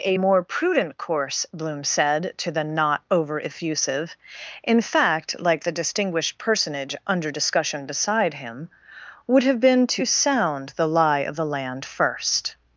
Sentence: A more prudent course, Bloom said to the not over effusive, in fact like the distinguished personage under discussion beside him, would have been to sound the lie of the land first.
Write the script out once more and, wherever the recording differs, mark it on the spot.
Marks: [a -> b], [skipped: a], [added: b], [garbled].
A more prudent course, Bloom said to the not over effusive, in fact like the distinguished personage under discussion beside him, would have been to sound the lie of the land first.